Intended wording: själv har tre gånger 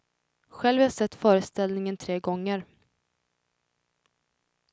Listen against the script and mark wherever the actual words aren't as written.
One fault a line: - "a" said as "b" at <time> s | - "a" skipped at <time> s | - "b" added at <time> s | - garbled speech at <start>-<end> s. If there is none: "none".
- "jag sett föreställningen" added at 0.8 s